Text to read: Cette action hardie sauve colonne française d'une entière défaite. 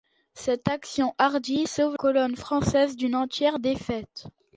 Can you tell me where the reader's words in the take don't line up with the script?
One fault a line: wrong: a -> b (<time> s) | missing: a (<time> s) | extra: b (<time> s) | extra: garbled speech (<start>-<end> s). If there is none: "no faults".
no faults